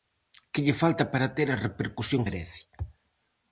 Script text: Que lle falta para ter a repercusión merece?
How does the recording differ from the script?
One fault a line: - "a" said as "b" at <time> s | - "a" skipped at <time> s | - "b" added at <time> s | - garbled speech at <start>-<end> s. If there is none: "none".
none